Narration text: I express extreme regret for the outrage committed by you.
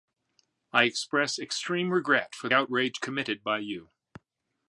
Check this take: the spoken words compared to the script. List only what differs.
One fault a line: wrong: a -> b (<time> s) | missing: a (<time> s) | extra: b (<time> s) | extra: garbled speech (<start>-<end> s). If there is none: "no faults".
missing: the (2.5 s)